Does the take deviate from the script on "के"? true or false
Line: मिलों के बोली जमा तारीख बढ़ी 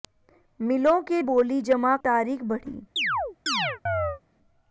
false